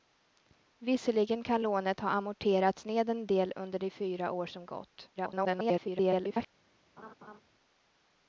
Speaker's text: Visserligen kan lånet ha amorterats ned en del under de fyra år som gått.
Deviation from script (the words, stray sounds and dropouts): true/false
true